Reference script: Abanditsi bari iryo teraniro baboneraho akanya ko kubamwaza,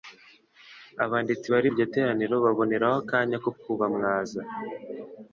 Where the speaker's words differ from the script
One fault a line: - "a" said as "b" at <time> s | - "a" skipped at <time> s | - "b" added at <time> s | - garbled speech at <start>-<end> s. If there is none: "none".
none